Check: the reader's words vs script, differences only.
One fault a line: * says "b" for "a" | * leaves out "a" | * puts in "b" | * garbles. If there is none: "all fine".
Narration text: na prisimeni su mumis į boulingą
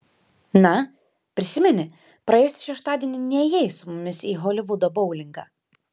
* puts in "praėjusį šeštadienį nėjai"
* puts in "holivudo"